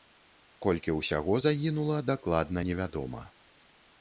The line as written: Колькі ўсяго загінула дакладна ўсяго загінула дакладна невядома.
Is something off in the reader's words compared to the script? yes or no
yes